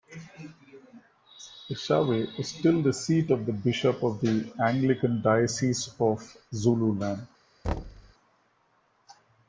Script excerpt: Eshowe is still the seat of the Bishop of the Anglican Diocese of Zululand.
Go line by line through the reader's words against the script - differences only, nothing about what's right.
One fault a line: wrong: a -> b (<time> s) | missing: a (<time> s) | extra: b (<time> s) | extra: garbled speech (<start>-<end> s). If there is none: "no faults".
no faults